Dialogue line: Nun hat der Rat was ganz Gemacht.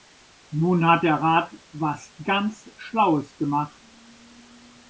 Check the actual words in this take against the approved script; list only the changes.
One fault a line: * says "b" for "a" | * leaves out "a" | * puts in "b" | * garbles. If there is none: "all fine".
* puts in "Schlaues"